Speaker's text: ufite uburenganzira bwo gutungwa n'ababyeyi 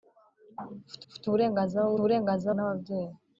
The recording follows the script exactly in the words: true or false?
false